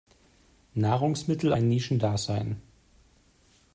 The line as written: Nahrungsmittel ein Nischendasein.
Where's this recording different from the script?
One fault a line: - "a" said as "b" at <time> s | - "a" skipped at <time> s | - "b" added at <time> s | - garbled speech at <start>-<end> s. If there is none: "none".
none